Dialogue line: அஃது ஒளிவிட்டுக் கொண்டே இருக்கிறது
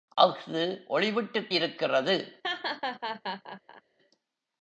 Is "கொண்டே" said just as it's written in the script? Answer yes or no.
no